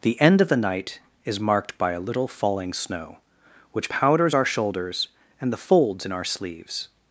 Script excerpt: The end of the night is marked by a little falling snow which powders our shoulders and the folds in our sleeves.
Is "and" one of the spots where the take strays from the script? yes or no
no